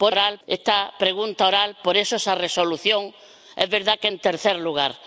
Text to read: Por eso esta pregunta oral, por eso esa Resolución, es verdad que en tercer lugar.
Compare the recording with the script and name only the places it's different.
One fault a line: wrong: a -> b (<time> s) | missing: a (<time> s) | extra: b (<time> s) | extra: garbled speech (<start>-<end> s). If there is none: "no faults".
wrong: eso -> oral (0.1 s)